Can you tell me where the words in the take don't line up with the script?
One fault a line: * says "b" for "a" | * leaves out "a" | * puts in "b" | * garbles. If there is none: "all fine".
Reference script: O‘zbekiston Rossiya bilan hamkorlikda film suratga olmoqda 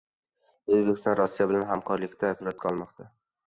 * leaves out "film"